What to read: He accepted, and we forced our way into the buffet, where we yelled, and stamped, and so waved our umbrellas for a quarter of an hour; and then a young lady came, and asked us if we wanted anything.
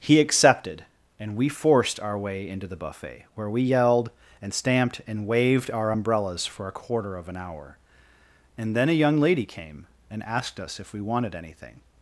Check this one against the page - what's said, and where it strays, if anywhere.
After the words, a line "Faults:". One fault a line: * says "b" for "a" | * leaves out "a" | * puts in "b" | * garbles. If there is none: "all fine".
He accepted, and we forced our way into the buffet, where we yelled, and stamped, and waved our umbrellas for a quarter of an hour; and then a young lady came, and asked us if we wanted anything.
Faults:
* leaves out "so"